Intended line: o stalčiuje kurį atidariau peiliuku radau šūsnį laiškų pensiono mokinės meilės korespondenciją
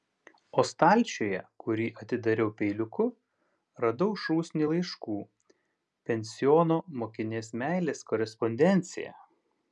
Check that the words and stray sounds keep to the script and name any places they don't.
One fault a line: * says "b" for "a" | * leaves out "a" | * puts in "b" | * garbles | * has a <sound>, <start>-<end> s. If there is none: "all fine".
all fine